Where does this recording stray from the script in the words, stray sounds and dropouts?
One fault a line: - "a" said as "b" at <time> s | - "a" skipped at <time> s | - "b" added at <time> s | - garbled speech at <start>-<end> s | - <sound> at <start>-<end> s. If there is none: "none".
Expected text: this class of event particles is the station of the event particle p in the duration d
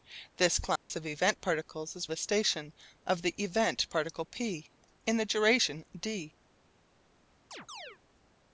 - dropout at 0.8-0.9 s
- chirp at 7.5-8.0 s